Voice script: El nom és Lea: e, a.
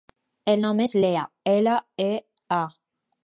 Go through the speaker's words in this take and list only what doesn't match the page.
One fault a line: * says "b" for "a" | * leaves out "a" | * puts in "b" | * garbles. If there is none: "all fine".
* puts in "ela"